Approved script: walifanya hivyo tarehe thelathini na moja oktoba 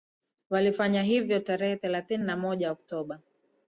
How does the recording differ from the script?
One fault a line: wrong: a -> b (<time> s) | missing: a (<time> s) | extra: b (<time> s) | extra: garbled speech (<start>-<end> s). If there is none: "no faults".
no faults